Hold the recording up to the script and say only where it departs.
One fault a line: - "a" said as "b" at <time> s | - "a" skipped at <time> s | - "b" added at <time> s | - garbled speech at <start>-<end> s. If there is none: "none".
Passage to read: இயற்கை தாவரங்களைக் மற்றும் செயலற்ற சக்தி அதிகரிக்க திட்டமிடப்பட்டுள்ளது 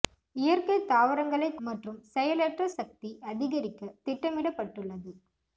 none